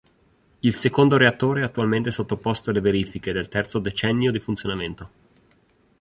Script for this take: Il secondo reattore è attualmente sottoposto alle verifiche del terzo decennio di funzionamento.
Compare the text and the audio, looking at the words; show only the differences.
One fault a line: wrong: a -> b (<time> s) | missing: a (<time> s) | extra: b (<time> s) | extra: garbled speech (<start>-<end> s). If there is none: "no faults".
no faults